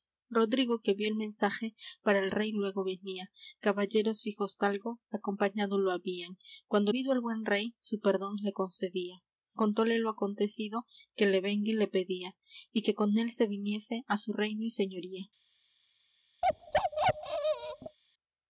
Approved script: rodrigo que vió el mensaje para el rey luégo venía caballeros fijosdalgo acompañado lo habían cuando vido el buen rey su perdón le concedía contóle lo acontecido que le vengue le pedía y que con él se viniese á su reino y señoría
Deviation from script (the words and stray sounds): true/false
true